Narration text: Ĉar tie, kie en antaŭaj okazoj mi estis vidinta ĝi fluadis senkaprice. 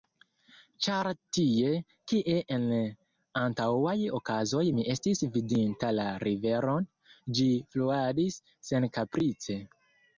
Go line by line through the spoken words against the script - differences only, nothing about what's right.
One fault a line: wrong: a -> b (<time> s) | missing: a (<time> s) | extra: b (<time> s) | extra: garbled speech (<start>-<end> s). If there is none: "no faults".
extra: la riveron (6.0 s)